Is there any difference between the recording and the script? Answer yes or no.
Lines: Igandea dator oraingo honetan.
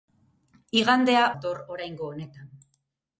no